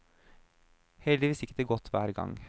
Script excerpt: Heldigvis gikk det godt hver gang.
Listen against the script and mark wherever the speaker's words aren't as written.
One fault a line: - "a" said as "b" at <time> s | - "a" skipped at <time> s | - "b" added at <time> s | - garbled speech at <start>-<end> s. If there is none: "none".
none